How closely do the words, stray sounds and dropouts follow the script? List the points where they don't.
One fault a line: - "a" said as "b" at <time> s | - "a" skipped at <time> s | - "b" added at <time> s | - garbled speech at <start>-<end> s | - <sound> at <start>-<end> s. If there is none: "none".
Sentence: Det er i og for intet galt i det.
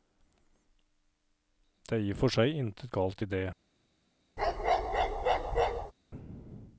- "seg" added at 2.3 s
- bark at 4.4-5.9 s